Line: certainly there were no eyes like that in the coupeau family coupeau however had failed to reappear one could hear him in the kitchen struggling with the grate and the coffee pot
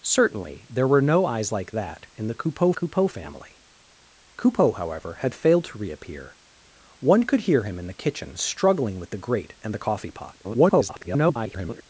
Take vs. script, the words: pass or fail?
fail